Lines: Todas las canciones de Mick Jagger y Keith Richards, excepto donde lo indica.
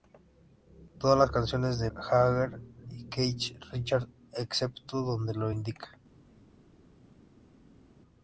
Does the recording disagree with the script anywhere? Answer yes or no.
yes